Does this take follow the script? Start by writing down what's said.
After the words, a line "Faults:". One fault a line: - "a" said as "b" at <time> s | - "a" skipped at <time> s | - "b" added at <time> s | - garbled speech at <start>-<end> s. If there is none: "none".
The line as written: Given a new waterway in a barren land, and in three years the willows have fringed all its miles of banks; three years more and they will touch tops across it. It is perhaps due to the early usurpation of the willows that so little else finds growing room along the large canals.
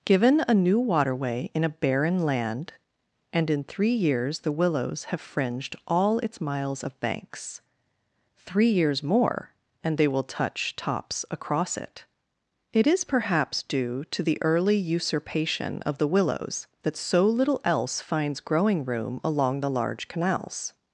Given a new waterway in a barren land, and in three years the willows have fringed all its miles of banks; three years more and they will touch tops across it. It is perhaps due to the early usurpation of the willows that so little else finds growing room along the large canals.
Faults:
none